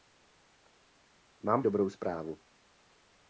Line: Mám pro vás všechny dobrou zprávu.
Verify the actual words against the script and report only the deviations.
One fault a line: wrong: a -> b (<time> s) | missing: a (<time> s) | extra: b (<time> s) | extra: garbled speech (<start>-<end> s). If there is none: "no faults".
missing: pro vás všechny (1.6 s)